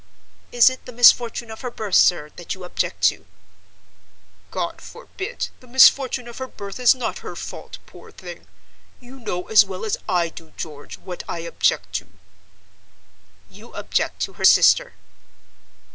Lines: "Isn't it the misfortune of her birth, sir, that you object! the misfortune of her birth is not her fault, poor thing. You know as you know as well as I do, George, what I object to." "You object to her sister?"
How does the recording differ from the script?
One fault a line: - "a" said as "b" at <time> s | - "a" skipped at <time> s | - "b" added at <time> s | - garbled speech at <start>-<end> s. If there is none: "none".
- "Isn't" said as "Is" at 0.5 s
- "to God forbid" added at 3.1 s
- "you know as" skipped at 9.6 s